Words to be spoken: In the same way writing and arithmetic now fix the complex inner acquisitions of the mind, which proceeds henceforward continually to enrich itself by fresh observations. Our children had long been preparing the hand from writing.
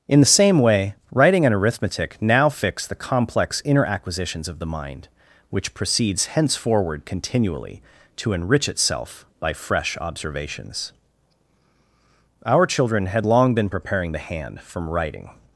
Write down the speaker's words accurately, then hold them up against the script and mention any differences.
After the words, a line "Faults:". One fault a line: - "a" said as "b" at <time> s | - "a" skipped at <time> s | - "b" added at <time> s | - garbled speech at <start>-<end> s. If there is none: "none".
In the same way writing and arithmetic now fix the complex inner acquisitions of the mind, which proceeds henceforward continually to enrich itself by fresh observations. Our children had long been preparing the hand from writing.
Faults:
none